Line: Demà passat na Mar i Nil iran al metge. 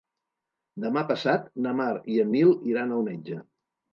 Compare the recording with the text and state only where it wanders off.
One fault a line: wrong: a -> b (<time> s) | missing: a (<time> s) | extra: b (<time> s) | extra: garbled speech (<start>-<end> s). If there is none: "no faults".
extra: en (2.2 s)